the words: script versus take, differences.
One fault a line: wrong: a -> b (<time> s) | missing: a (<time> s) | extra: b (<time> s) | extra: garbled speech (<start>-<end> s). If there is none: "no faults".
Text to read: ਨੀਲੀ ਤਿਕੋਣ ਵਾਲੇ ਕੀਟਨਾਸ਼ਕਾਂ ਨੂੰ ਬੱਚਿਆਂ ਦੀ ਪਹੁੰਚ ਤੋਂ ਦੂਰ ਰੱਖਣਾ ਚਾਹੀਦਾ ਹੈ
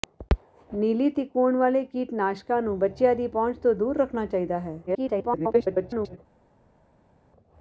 extra: garbled speech (4.9-6.2 s)